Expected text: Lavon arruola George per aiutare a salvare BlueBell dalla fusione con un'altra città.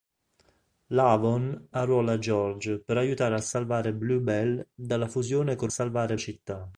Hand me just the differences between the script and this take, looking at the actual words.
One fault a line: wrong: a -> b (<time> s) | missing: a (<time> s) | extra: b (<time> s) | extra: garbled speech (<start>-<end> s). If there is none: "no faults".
wrong: un'altra -> salvare (5.7 s)